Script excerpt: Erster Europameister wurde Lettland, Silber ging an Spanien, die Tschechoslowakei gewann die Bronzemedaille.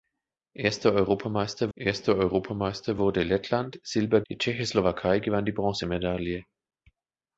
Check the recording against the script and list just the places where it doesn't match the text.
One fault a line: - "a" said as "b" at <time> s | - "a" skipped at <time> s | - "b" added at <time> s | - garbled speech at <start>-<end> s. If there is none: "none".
- "erster Europameister" added at 1.8 s
- "ging an Spanien" skipped at 4.2 s